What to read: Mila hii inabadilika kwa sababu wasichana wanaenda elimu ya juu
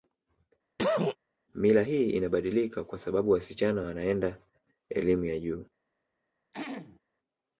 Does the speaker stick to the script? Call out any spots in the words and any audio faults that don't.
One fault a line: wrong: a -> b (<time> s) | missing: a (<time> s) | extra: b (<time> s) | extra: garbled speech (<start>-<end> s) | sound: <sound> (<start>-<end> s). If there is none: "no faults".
sound: cough (0.8-1.2 s)
sound: throat clearing (6.5-7.0 s)